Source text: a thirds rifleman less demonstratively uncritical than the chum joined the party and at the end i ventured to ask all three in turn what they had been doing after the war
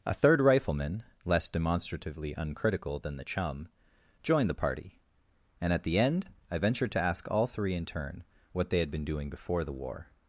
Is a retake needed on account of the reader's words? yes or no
yes